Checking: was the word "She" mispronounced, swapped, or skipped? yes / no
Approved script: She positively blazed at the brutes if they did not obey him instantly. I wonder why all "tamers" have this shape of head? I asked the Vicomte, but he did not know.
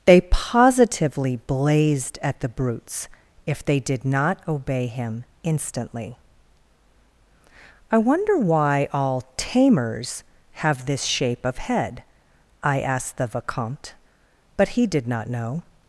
yes